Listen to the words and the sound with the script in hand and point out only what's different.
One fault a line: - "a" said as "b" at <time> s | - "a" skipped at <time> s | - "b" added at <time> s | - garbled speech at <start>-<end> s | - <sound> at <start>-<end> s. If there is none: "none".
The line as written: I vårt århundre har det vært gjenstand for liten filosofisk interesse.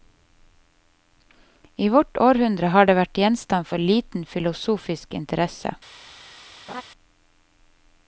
- laugh at 6.7-6.8 s